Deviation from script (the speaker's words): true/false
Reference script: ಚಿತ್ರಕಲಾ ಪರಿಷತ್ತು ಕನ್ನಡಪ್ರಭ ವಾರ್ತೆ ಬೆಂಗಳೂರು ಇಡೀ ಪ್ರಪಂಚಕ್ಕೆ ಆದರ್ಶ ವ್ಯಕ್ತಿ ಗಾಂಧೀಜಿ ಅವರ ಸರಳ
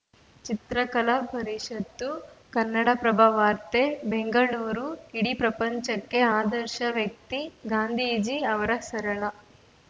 false